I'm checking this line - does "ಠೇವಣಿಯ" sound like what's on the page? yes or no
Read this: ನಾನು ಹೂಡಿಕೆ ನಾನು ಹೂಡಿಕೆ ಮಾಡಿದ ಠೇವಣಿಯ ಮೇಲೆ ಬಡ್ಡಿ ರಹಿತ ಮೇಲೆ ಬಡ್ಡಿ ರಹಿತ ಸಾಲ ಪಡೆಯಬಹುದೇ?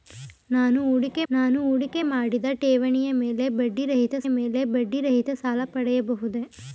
yes